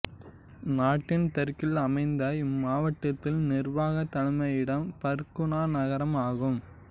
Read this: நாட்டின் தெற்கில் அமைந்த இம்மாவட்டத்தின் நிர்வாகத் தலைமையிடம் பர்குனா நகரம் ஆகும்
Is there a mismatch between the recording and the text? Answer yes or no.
no